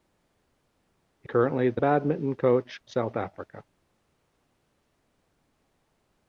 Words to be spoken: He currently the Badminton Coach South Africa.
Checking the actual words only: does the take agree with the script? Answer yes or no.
yes